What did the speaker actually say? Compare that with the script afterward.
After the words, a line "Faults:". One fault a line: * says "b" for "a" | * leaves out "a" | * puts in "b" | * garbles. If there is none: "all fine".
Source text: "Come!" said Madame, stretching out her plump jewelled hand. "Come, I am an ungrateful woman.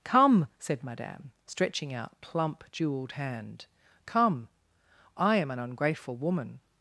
"Come!" said Madame, stretching out plump jewelled hand. "Come, I am an ungrateful woman.
Faults:
* leaves out "her"